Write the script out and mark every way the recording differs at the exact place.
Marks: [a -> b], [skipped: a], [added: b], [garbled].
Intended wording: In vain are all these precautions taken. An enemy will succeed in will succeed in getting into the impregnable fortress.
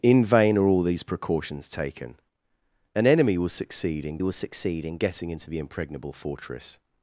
In vain are all these precautions taken. An enemy will succeed in will succeed in getting into the impregnable fortress.